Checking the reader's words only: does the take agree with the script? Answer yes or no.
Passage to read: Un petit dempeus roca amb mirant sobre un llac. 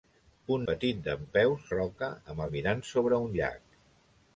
yes